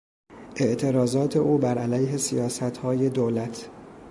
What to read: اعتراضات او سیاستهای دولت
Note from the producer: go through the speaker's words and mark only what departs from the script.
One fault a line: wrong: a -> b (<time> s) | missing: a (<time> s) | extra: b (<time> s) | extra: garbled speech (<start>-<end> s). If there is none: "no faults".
extra: بر علیه (1.6 s)